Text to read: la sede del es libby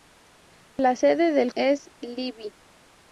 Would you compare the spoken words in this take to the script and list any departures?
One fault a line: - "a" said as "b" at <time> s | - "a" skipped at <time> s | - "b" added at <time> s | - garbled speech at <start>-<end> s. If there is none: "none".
none